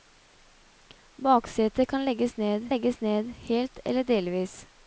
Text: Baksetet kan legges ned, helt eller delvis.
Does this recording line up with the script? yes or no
no